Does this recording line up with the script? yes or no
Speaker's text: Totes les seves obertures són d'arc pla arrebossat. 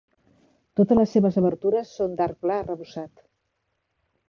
yes